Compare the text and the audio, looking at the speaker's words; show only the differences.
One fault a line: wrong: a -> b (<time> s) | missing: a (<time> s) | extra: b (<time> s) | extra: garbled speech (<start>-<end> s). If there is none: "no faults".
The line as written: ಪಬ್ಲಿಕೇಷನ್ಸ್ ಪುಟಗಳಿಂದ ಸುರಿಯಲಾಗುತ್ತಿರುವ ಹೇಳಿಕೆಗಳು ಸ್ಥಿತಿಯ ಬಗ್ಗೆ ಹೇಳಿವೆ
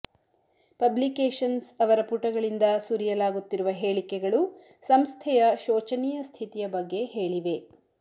extra: ಅವರ (1.8 s)
extra: ಸಂಸ್ಥೆಯ ಶೋಚನೀಯ (4.8 s)